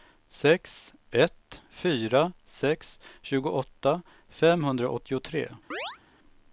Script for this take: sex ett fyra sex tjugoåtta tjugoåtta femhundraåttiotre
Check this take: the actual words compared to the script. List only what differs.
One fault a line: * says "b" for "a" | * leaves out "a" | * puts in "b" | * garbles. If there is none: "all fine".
* leaves out "tjugoåtta"